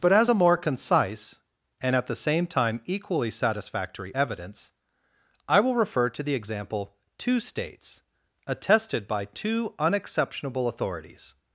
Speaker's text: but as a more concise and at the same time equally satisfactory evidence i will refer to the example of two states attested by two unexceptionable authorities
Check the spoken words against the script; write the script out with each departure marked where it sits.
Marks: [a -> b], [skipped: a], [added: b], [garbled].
but as a more concise and at the same time equally satisfactory evidence i will refer to the example [skipped: of] two states attested by two unexceptionable authorities